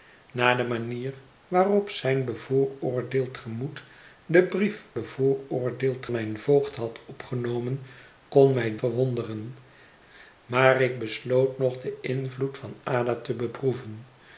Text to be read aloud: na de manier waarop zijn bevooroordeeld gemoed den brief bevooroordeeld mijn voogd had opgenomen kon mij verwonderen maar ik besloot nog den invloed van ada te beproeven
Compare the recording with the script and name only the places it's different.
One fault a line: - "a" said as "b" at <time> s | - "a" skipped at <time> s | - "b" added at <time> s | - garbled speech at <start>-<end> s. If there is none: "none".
none